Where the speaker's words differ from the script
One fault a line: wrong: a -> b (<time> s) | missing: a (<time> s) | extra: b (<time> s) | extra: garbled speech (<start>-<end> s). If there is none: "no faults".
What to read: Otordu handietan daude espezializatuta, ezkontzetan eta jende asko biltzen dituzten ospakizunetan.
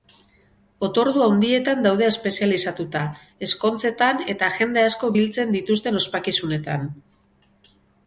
no faults